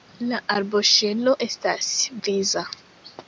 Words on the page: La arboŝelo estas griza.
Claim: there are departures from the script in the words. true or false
false